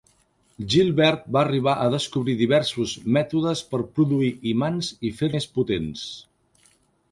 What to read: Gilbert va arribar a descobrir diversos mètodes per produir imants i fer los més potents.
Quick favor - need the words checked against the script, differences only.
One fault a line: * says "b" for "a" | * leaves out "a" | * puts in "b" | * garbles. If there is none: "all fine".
* leaves out "los"